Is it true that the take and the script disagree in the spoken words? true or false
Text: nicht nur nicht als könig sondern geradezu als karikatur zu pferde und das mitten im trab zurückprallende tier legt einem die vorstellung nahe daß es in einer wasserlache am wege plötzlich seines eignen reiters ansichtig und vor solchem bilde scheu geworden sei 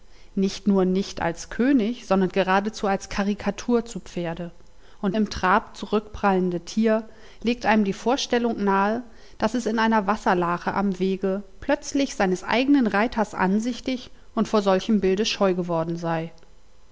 true